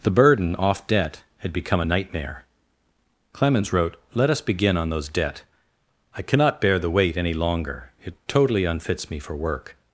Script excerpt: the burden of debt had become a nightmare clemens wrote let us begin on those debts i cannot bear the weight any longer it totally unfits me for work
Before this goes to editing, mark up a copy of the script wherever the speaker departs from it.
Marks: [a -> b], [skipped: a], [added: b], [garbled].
the burden [of -> off] debt had become a nightmare clemens wrote let us begin on those [debts -> debt] i cannot bear the weight any longer it totally unfits me for work